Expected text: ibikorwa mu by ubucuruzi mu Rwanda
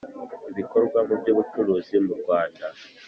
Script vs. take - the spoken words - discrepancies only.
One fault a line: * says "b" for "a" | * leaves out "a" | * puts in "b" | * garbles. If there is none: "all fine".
all fine